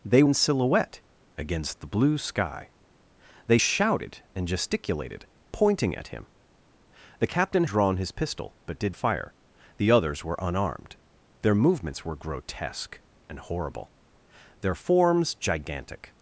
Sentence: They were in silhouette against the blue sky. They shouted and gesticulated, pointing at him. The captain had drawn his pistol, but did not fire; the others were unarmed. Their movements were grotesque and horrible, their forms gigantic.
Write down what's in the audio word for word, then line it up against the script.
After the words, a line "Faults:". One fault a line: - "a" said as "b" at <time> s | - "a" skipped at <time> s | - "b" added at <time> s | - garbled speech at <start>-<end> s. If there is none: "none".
They in silhouette against the blue sky. They shouted and gesticulated, pointing at him. The captain drawn his pistol, but did fire; the others were unarmed. Their movements were grotesque and horrible, their forms gigantic.
Faults:
- "were" skipped at 0.2 s
- "had" skipped at 7.6 s
- "not" skipped at 8.9 s